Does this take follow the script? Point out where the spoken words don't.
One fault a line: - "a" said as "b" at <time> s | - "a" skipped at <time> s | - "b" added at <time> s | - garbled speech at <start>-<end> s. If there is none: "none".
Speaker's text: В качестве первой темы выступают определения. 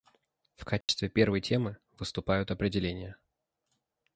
none